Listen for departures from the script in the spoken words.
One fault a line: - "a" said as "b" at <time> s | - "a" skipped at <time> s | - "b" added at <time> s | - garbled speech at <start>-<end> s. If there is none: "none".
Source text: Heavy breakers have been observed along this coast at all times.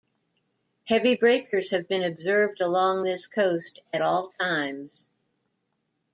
none